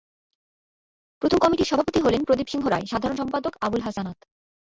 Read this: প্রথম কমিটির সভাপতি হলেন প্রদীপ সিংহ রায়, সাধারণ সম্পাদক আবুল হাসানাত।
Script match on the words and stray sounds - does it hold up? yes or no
yes